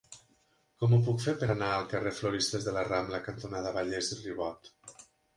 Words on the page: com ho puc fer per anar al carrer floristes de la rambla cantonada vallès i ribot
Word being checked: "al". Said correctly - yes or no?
yes